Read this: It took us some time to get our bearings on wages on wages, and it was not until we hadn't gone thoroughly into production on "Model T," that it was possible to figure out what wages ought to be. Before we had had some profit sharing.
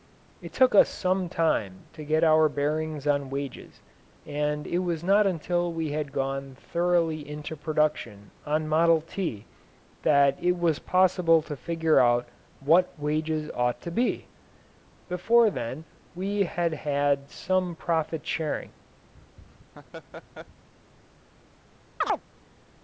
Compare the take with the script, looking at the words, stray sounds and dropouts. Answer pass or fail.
fail